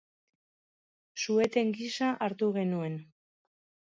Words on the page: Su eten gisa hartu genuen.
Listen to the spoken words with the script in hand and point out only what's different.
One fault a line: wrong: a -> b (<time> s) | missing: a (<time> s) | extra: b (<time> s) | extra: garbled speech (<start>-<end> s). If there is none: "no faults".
no faults